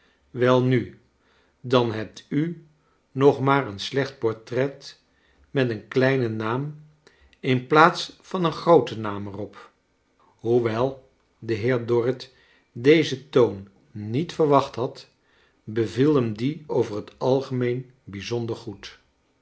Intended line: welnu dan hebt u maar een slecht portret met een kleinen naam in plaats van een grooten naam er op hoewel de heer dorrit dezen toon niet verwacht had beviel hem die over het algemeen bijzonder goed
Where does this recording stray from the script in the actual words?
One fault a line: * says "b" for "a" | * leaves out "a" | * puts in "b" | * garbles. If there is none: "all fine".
* puts in "nog"